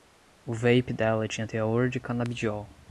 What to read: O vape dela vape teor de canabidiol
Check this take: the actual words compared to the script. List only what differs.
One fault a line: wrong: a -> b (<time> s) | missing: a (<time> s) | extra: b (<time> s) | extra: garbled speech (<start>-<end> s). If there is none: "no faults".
wrong: vape -> tinha (1.3 s)